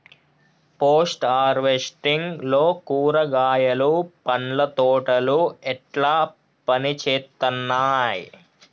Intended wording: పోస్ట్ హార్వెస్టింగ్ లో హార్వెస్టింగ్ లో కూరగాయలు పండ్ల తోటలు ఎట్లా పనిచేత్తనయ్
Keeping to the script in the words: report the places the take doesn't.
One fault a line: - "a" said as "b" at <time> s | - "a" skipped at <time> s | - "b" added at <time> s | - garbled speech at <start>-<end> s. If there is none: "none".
- "హార్వెస్టింగ్ లో" skipped at 2.6 s